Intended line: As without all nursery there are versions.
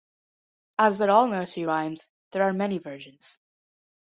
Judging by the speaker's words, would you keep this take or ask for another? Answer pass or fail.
fail